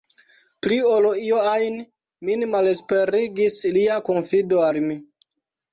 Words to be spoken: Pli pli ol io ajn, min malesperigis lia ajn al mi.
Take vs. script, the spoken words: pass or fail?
fail